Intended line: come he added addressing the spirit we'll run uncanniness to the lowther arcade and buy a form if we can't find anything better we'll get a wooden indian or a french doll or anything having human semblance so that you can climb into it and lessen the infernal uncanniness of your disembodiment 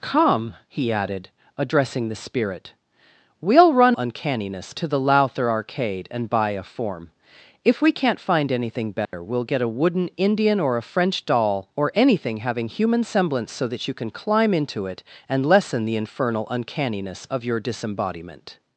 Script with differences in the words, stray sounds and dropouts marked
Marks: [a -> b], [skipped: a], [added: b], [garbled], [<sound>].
come he added addressing the spirit we'll run uncanniness to the lowther arcade and buy a form if we can't find anything better [dropout] we'll get a wooden indian or a french doll or anything having human semblance so that you can climb into it and lessen the infernal uncanniness of your disembodiment